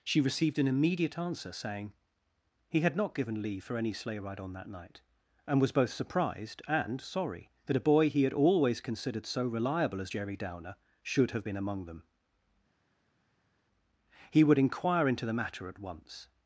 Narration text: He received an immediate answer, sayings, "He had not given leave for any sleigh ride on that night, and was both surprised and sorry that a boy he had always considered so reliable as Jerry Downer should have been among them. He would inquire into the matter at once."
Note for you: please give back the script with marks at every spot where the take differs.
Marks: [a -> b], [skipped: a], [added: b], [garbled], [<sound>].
[He -> She] received an immediate answer, [sayings, -> saying] "He had not given leave for any sleigh ride on that night, and was both surprised and sorry that a boy he had always considered so reliable as Jerry Downer should have been among them. He would inquire into the matter at once."